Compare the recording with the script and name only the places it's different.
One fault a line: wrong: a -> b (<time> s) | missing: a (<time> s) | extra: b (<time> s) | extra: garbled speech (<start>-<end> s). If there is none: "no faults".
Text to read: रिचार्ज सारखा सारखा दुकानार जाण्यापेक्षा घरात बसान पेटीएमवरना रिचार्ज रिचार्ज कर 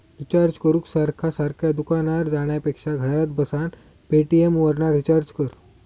extra: करूक (0.6 s)
missing: रिचार्ज (5.3 s)